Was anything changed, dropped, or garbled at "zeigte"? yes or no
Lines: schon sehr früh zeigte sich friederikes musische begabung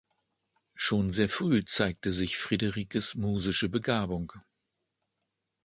no